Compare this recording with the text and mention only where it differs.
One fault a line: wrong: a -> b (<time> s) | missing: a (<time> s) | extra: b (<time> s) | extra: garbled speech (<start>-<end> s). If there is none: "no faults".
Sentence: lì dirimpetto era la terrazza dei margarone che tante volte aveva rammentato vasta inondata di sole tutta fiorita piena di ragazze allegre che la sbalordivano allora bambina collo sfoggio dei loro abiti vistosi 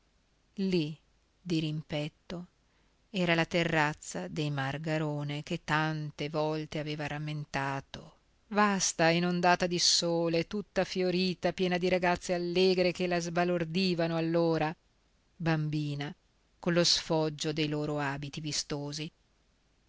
no faults